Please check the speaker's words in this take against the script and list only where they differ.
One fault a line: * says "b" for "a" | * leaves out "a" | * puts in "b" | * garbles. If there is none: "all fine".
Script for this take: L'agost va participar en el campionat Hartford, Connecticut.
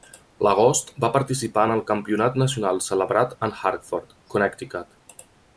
* puts in "nacional celebrat en"